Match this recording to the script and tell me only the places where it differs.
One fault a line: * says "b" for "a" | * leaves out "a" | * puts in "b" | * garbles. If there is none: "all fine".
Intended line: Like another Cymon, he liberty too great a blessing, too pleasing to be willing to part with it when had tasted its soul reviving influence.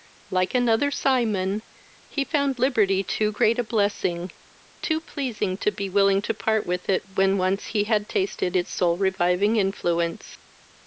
* puts in "found"
* puts in "once he"